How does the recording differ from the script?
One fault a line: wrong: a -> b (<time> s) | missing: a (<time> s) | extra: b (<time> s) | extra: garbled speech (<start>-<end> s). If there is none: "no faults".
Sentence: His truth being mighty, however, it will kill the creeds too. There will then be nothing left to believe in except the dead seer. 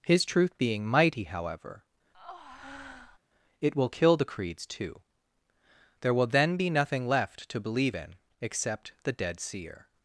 no faults